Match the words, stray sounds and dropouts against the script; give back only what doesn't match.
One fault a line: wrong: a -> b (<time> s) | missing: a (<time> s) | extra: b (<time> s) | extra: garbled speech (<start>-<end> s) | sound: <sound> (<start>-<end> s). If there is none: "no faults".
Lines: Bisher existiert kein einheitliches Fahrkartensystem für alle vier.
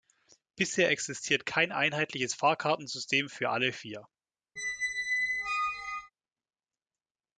sound: squeak (4.6-6.1 s)